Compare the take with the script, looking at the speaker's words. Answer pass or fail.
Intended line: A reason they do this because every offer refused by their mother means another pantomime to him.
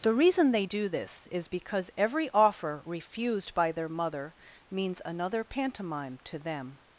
fail